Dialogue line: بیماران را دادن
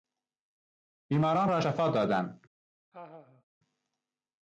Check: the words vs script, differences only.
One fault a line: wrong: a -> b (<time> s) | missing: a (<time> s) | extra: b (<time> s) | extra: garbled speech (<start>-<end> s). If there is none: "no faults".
extra: شفا (1.6 s)